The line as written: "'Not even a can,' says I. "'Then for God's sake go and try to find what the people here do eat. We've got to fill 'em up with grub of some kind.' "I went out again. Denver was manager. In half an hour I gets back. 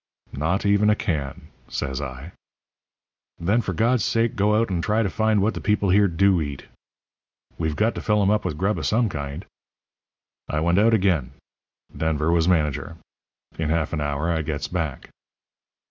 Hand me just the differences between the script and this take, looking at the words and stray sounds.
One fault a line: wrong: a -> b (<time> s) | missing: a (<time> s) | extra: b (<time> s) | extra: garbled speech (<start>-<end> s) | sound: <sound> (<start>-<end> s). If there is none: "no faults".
extra: out (4.6 s)